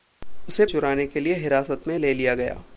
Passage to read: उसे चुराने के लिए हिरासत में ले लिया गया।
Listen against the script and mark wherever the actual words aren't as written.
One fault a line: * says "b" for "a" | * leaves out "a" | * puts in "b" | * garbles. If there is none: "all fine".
all fine